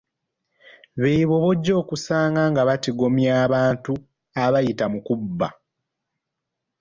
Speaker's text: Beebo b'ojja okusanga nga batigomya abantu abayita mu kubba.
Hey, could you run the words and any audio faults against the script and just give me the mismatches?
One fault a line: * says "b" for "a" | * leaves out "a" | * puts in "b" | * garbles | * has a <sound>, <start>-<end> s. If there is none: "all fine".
all fine